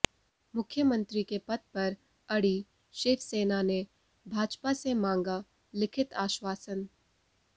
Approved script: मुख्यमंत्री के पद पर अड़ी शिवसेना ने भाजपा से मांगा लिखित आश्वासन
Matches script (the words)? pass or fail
pass